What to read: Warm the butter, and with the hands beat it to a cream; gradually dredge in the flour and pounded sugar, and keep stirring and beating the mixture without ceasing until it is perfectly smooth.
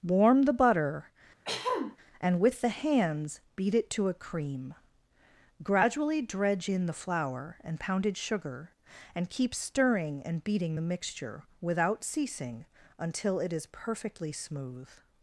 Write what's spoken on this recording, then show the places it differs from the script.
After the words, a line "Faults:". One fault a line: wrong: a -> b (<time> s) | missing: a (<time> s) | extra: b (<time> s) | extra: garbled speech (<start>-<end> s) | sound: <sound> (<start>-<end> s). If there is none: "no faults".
Warm the butter, and with the hands beat it to a cream; gradually dredge in the flour and pounded sugar, and keep stirring and beating the mixture without ceasing until it is perfectly smooth.
Faults:
sound: throat clearing (1.4-2.0 s)